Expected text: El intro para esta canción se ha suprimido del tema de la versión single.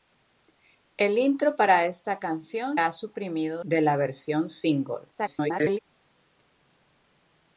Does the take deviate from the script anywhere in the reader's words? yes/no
yes